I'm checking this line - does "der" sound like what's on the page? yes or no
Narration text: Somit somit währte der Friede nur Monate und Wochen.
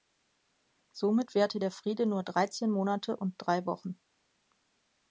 yes